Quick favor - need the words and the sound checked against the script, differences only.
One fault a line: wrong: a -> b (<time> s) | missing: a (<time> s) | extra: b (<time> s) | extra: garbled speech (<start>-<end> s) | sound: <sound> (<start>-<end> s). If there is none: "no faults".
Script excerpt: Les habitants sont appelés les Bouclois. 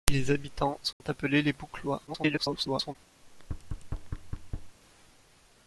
sound: dropout (0.9-1.0 s)
extra: garbled speech (2.1-3.0 s)
sound: thud (3.2-4.8 s)